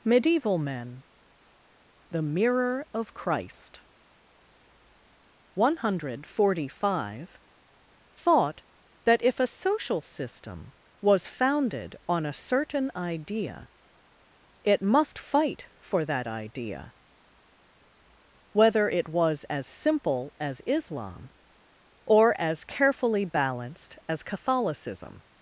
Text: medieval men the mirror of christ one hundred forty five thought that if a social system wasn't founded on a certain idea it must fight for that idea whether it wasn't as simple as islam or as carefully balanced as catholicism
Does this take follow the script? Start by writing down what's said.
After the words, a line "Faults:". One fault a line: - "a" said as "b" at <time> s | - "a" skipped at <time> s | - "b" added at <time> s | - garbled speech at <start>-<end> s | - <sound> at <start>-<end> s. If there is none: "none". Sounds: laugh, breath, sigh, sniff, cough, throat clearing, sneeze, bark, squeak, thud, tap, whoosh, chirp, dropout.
medieval men the mirror of christ one hundred forty five thought that if a social system was founded on a certain idea it must fight for that idea whether it was as simple as islam or as carefully balanced as catholicism
Faults:
- "wasn't" said as "was" at 11.0 s
- "wasn't" said as "was" at 19.1 s